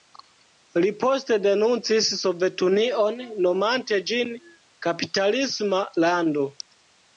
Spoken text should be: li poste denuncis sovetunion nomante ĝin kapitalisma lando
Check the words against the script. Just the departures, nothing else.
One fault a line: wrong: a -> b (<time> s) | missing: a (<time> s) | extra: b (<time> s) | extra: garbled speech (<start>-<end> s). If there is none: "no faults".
no faults